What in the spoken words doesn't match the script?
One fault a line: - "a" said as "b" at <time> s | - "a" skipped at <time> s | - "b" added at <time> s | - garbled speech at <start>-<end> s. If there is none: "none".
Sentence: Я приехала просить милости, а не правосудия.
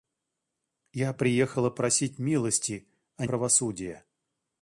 - "не" skipped at 3.2 s